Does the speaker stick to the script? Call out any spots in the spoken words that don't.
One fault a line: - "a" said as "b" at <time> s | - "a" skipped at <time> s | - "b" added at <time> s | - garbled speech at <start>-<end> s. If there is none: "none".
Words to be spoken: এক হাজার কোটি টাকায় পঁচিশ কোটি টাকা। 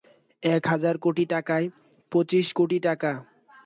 none